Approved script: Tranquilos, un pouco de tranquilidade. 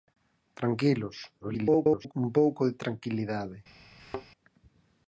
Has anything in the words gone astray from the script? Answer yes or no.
yes